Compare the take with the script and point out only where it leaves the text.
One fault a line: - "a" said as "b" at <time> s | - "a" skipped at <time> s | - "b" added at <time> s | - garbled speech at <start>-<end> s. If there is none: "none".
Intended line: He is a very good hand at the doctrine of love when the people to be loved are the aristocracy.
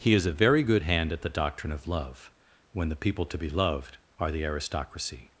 none